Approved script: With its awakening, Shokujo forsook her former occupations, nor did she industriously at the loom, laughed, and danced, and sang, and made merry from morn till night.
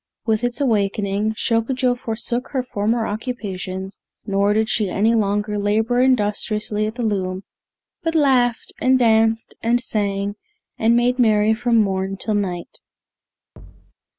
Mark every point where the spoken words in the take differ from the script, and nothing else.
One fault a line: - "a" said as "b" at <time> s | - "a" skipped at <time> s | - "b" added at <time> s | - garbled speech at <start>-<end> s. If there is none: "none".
- "any longer labor" added at 4.9 s
- "but" added at 8.0 s